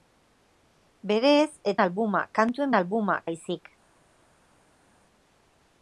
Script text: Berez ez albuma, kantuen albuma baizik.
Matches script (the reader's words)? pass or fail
pass